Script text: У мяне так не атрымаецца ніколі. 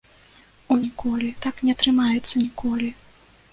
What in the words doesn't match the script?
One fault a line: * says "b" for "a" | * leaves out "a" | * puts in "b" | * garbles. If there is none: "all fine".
* says "ніколі" for "мяне"